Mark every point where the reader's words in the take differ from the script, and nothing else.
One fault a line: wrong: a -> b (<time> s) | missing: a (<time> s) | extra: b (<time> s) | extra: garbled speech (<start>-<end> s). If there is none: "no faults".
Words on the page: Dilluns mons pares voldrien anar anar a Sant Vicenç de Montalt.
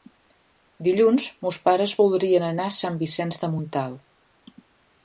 missing: anar (2.7 s)